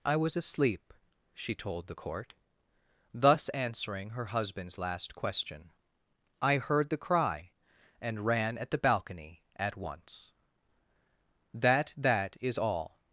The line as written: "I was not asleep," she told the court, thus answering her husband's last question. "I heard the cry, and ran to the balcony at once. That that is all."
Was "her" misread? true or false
false